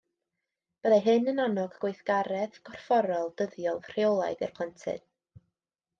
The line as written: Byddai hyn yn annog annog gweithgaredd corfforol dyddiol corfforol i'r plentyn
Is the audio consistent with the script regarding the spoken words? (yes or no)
no